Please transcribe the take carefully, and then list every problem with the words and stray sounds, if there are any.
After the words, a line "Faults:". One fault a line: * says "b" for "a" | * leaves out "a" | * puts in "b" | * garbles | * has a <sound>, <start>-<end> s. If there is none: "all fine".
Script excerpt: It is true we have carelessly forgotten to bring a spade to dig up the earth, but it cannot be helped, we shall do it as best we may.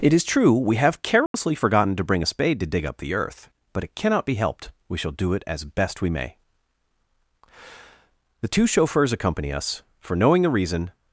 It is true we have carelessly forgotten to bring a spade to dig up the earth, but it cannot be helped, we shall do it as best we may. The two chauffeurs accompany us, for knowing the reason
Faults:
* has a dropout, 1.3-1.3 s
* puts in "The two chauffeurs accompany us for knowing the reason"